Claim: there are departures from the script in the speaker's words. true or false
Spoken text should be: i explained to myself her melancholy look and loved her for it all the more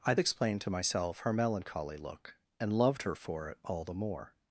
false